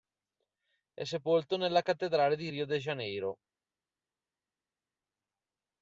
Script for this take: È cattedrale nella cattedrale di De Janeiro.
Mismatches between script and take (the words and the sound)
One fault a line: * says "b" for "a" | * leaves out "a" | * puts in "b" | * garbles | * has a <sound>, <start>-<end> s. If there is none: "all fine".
* says "sepolto" for "cattedrale"
* puts in "Rio"